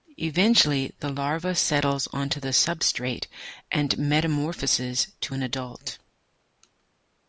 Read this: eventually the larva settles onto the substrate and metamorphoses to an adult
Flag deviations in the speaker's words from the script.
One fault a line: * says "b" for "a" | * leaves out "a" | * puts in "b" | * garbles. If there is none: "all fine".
all fine